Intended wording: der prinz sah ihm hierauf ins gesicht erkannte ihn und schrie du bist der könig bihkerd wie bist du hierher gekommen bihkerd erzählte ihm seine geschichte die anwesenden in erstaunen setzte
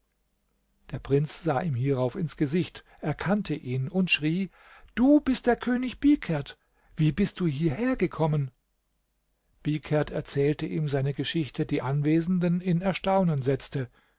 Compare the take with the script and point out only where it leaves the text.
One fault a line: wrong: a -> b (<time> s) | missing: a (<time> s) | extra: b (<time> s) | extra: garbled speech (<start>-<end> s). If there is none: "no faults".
no faults